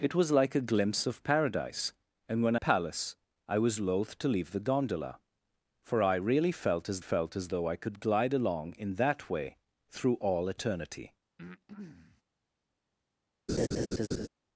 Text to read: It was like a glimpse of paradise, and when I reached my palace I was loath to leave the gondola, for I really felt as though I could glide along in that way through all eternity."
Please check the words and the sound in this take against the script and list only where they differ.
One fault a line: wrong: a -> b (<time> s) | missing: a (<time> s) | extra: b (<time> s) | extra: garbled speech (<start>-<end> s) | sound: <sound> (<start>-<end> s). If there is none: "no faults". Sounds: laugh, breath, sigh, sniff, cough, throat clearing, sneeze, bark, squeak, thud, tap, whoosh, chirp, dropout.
missing: I reached my (2.5 s)
extra: felt as (7.0 s)
sound: breath (11.4-12.2 s)
sound: laugh (13.5-14.3 s)